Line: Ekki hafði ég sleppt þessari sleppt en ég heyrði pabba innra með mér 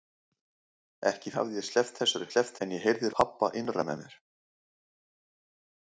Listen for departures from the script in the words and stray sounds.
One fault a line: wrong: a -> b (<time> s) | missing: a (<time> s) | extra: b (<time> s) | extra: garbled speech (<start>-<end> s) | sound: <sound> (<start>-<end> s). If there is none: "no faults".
no faults